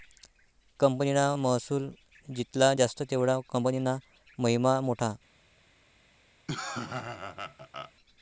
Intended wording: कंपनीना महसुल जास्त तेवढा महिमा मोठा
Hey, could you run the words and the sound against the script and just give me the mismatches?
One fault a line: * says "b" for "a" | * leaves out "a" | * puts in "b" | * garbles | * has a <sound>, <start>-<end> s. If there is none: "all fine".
* puts in "जित्ला"
* puts in "कंपनीना"
* has a laugh, 6.5-7.9 s